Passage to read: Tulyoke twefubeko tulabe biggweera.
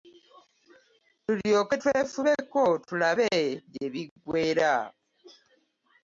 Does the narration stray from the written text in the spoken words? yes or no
yes